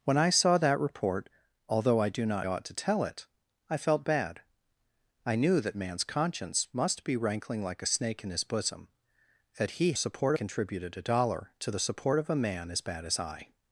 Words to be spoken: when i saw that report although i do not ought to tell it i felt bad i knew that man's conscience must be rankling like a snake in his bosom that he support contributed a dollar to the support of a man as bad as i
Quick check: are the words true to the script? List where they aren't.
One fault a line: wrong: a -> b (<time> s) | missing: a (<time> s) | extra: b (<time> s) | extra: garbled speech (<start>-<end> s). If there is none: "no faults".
no faults